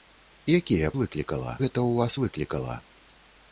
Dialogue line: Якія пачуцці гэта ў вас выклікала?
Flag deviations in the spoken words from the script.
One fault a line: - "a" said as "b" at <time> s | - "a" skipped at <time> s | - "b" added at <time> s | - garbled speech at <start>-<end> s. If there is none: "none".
- "пачуцці" said as "выклікала" at 1.0 s